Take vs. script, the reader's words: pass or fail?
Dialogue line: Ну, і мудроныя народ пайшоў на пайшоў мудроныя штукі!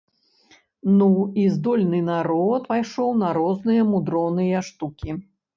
fail